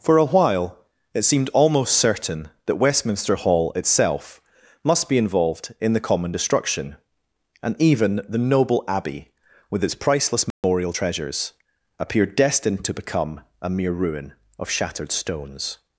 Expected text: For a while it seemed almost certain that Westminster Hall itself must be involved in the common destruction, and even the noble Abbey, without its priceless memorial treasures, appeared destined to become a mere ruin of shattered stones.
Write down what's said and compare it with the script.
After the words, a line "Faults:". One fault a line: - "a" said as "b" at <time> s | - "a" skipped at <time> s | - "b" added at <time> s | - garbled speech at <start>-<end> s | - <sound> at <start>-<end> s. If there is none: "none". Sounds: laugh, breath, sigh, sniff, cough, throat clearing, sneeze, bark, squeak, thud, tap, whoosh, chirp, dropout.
For a while it seemed almost certain that Westminster Hall itself must be involved in the common destruction, and even the noble Abbey, with its priceless memorial treasures, appeared destined to become a mere ruin of shattered stones.
Faults:
- "without" said as "with" at 9.7 s
- dropout at 10.5-10.6 s